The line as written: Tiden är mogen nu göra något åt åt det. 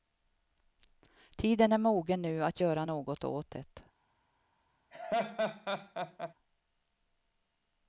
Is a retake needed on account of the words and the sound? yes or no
yes